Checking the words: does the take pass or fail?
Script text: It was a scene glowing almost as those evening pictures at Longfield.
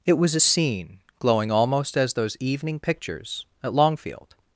pass